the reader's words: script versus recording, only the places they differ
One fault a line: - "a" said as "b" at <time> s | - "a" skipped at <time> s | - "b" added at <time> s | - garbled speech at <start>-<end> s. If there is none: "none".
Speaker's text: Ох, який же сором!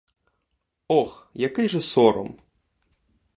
none